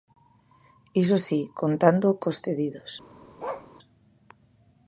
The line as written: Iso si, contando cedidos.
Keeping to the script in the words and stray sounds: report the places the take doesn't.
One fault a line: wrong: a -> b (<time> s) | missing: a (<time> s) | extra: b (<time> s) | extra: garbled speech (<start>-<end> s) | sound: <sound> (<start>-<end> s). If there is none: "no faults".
extra: cos (2.2 s)
sound: bark (3.4-3.7 s)